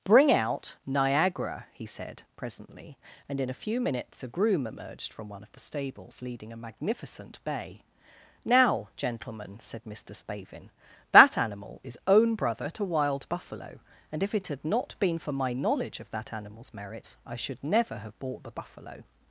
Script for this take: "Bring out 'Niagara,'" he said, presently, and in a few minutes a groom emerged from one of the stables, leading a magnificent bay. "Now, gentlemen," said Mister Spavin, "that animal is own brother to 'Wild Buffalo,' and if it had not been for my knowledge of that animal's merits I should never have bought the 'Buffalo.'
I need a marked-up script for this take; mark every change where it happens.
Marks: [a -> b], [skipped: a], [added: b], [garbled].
"Bring out 'Niagara,'" he said, presently, and in a few minutes a groom emerged from one of the stables, leading a magnificent bay. "Now, gentlemen," said Mister Spavin, "that animal is own brother to 'Wild Buffalo,' and if it had not been for my knowledge of that animal's merits I should never have bought the 'Buffalo.'